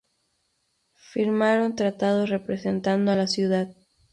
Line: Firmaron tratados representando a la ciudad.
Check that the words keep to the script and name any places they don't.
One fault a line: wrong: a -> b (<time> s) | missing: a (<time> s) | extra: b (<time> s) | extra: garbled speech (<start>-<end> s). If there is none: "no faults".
no faults